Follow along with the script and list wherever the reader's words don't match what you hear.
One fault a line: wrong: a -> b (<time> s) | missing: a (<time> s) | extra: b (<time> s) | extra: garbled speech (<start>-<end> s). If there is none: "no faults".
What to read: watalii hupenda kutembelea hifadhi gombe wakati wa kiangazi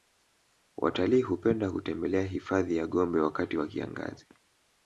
extra: ya (2.8 s)